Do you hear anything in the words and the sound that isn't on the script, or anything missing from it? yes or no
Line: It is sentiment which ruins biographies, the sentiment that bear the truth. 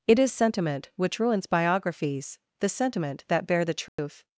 yes